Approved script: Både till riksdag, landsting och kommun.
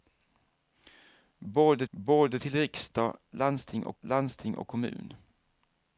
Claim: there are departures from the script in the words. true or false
true